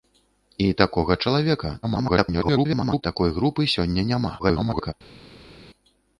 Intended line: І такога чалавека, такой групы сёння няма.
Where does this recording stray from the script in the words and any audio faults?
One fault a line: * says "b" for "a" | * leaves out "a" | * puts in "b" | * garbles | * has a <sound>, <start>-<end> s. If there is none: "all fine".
* garbles
* garbles